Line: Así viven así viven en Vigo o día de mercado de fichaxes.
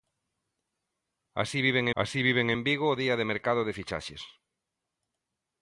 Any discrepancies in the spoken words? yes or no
no